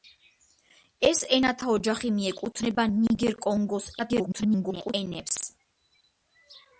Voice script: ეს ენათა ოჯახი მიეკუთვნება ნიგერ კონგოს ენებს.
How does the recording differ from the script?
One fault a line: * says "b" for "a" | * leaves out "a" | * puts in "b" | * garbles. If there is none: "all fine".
* garbles